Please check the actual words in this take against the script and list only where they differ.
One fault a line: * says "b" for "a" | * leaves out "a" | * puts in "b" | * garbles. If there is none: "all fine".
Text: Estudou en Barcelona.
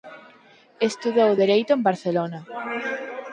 * puts in "dereito"